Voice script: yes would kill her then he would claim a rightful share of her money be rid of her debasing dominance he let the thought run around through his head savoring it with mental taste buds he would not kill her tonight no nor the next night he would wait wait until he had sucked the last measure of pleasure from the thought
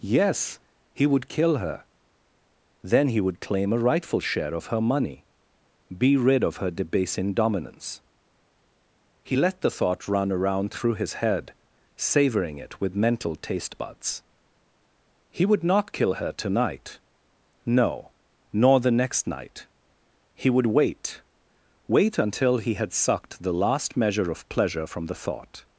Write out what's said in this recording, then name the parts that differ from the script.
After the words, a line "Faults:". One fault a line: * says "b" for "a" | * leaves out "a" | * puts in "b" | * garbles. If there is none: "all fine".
yes he would kill her then he would claim a rightful share of her money be rid of her debasing dominance he let the thought run around through his head savoring it with mental taste buds he would not kill her tonight no nor the next night he would wait wait until he had sucked the last measure of pleasure from the thought
Faults:
* puts in "he"